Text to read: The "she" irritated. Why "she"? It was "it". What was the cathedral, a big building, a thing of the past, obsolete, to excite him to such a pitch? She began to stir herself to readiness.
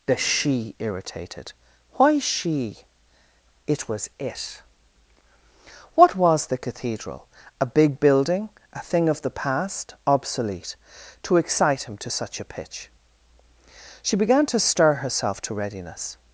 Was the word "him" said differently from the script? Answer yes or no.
no